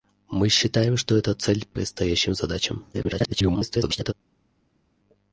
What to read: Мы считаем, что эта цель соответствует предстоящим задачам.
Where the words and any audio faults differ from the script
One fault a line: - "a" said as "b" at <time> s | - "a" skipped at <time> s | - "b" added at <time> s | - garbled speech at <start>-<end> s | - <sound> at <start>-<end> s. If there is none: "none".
- "соответствует" skipped at 1.7 s
- garbled speech at 2.9-4.1 s